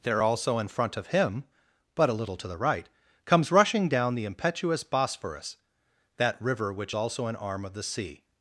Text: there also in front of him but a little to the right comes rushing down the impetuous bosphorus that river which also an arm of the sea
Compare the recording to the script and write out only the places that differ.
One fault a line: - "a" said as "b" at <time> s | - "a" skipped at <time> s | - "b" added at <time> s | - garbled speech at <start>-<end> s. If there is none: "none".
none